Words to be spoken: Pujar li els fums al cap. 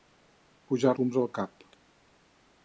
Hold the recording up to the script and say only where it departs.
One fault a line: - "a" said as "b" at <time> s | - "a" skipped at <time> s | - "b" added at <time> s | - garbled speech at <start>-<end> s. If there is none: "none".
- "li els" skipped at 0.9 s